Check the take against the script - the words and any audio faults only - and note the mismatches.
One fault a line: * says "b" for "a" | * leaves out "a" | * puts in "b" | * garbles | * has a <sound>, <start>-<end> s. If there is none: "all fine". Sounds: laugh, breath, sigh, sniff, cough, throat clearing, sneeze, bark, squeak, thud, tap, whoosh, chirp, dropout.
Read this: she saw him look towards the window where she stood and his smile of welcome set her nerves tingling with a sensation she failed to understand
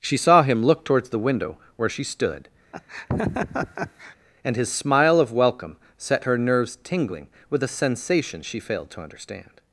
* has a laugh, 2.7-4.2 s